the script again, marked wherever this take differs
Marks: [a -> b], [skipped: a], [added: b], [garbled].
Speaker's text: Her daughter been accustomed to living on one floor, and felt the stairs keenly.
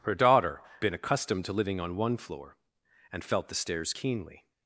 Her daughter been accustomed to living on one floor, and felt the stairs keenly.